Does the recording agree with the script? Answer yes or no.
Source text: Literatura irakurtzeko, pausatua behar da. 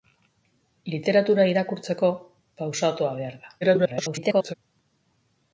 no